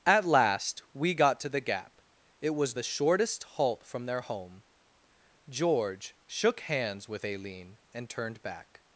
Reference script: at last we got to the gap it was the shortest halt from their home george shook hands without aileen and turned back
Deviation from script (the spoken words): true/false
true